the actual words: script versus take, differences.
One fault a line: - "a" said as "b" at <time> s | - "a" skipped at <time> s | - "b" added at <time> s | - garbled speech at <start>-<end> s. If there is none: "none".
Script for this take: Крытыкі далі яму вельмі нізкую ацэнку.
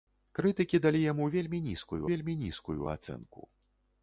- "вельмі нізкую" added at 2.1 s